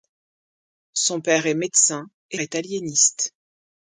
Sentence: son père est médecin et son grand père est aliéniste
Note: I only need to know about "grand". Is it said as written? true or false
false